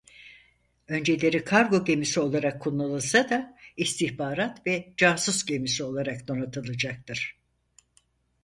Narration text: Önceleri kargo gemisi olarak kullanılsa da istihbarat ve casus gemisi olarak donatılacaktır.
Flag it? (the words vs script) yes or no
no